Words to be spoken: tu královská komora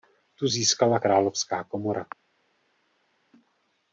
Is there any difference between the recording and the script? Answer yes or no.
yes